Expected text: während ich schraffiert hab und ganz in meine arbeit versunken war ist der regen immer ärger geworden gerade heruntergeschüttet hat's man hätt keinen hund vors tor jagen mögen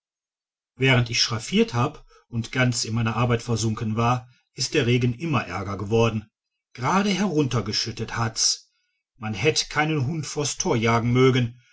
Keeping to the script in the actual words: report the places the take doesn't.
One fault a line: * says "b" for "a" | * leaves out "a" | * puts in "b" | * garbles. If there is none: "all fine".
all fine